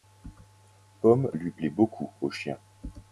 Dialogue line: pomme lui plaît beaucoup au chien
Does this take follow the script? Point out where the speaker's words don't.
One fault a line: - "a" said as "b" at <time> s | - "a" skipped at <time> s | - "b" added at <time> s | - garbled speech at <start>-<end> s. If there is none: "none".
none